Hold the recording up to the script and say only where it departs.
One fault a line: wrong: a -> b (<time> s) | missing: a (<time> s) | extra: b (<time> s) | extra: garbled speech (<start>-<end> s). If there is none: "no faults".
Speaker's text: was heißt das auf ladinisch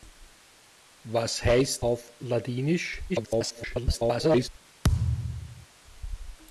missing: das (1.9 s)
extra: garbled speech (3.1-4.5 s)